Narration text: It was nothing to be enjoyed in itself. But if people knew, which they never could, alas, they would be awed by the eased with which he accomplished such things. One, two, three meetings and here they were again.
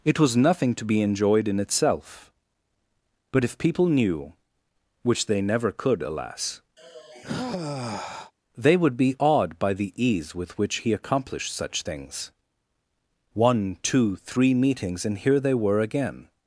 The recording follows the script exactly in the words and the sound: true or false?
false